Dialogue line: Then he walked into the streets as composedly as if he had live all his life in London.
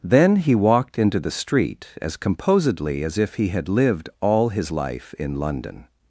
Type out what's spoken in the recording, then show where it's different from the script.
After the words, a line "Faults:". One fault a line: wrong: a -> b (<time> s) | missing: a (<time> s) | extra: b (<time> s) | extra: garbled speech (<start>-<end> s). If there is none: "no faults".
Then he walked into the street as composedly as if he had lived all his life in London.
Faults:
wrong: streets -> street (1.3 s)
wrong: live -> lived (3.7 s)